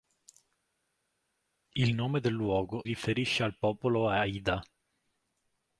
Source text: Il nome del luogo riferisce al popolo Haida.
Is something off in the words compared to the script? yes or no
no